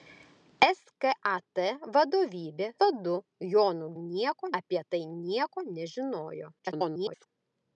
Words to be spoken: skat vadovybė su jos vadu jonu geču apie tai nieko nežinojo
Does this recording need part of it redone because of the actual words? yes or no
yes